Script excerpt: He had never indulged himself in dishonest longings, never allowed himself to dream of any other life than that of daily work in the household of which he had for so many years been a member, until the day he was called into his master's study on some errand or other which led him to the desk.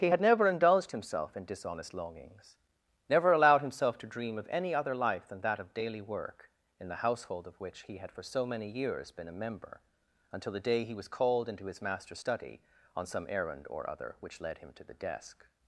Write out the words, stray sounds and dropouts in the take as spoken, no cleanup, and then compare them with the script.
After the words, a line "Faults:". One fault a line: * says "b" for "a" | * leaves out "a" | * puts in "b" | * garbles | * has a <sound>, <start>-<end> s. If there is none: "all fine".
He had never indulged himself in dishonest longings, never allowed himself to dream of any other life than that of daily work in the household of which he had for so many years been a member, until the day he was called into his master's study on some errand or other which led him to the desk.
Faults:
all fine